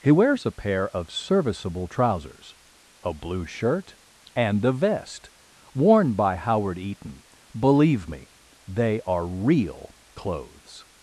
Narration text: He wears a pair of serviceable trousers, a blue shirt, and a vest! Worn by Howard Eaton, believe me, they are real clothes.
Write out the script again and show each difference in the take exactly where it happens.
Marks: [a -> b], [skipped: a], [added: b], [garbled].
He wears a pair of serviceable trousers, a blue shirt, and a vest! Worn by Howard Eaton, believe me, they are real clothes.